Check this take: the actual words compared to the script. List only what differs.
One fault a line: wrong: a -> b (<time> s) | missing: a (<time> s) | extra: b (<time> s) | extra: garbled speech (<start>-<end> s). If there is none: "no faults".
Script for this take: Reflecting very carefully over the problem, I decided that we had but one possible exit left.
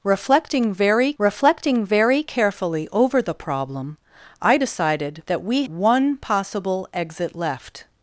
extra: reflecting very (1.2 s)
missing: had but (5.6 s)